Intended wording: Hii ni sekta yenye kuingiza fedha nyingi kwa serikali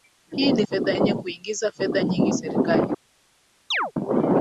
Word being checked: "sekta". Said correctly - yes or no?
no